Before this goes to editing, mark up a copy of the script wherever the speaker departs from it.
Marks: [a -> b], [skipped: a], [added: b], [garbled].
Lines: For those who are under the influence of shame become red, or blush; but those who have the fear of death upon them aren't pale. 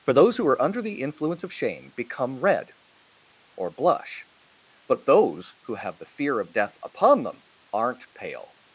For those who are under the influence of shame become red, or blush; but those who have the fear of death upon them aren't pale.